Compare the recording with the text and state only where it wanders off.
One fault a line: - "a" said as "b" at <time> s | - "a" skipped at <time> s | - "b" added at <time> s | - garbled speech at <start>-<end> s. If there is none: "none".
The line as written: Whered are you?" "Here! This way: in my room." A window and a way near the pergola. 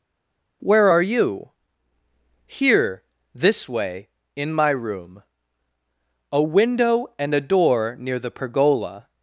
- "Whered" said as "Where" at 0.6 s
- "way" said as "door" at 7.4 s